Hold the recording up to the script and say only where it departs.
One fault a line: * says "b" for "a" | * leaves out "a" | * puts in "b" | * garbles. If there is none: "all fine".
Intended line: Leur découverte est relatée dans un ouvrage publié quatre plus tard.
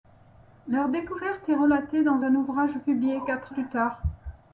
all fine